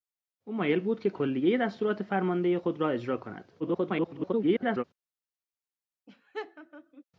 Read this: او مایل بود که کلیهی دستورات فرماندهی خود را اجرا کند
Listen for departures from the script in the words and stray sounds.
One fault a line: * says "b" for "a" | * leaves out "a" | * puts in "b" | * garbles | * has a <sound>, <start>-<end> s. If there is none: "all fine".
* garbles
* has a laugh, 6.1-7.0 s